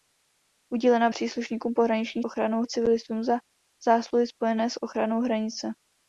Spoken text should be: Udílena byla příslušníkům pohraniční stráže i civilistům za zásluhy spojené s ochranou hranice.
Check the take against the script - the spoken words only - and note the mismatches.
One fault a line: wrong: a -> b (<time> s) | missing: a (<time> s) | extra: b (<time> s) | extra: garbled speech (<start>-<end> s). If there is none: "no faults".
missing: byla (1.1 s)
wrong: stráže -> ochranou (2.2 s)